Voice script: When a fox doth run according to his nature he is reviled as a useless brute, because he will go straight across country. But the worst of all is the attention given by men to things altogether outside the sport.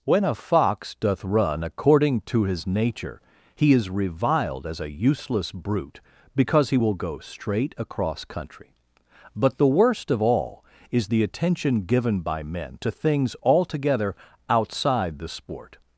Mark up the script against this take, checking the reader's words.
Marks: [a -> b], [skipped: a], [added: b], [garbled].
When a fox doth run according to his nature he is reviled as a useless brute, because he will go straight across country. But the worst of all is the attention given by men to things altogether outside the sport.